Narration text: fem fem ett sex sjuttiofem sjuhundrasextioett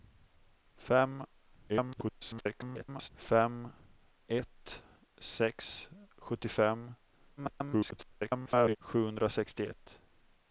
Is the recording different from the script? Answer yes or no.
yes